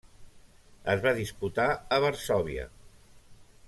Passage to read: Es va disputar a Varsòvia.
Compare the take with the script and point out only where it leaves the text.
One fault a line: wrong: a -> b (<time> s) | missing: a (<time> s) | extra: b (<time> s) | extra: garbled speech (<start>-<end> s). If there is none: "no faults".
no faults